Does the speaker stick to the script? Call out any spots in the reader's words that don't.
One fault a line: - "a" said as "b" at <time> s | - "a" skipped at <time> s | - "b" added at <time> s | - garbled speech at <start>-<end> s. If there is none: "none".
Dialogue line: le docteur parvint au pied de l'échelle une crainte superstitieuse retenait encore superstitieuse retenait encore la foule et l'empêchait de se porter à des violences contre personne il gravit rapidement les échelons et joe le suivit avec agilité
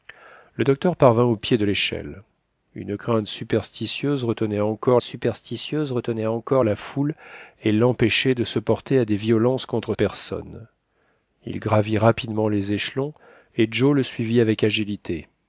none